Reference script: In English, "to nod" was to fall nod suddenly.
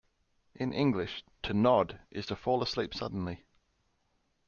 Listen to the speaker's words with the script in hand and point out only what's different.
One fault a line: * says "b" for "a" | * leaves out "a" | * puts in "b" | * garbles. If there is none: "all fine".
* says "is" for "was"
* says "asleep" for "nod"